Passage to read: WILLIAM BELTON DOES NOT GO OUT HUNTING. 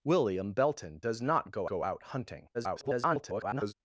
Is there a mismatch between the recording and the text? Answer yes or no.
yes